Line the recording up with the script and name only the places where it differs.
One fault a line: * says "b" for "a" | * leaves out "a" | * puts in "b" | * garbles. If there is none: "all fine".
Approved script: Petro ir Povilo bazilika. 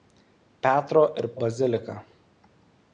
* leaves out "Povilo"